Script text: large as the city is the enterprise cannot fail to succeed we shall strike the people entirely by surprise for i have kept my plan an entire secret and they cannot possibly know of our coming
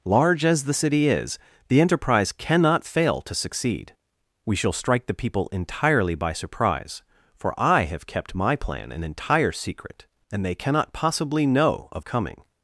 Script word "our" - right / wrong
wrong